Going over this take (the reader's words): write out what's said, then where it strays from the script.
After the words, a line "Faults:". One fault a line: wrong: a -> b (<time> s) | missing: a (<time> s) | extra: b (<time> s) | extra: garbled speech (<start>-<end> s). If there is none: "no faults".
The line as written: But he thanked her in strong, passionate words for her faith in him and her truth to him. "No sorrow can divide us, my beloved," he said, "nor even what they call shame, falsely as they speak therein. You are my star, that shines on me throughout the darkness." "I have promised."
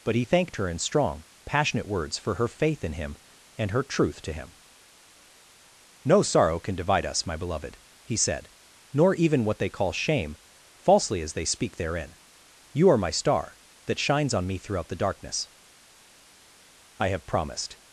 But he thanked her in strong, passionate words for her faith in him and her truth to him. "No sorrow can divide us, my beloved," he said, "nor even what they call shame, falsely as they speak therein. You are my star, that shines on me throughout the darkness." "I have promised."
Faults:
no faults